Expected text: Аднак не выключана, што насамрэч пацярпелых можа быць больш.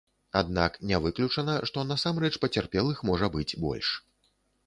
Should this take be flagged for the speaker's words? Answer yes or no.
no